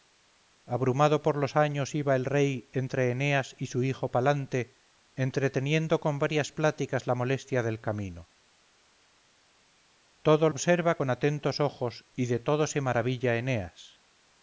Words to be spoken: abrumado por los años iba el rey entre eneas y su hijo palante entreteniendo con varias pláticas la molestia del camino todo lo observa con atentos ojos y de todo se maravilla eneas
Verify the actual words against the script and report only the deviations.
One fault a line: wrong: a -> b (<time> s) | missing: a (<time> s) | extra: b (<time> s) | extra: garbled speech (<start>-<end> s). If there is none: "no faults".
missing: lo (10.5 s)